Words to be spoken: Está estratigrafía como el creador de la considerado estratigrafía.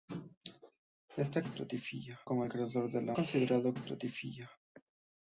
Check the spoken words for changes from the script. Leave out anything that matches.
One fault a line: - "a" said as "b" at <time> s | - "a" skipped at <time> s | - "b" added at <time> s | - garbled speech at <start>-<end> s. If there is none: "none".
none